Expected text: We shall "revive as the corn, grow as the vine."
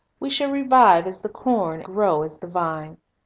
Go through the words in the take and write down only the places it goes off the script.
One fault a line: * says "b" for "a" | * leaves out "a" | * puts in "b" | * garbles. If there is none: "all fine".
all fine